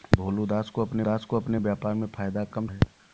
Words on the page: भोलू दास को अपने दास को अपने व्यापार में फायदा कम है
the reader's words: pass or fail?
pass